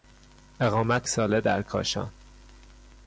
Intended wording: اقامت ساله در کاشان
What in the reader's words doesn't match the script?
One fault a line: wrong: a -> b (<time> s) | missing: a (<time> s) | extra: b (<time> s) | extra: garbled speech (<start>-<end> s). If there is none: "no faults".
no faults